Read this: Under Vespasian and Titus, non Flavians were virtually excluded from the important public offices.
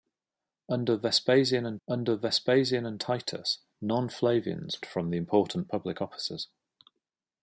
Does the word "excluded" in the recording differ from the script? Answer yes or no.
yes